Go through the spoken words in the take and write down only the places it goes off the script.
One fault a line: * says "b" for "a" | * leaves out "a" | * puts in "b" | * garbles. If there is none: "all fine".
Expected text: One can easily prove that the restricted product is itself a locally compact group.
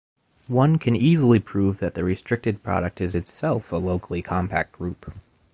all fine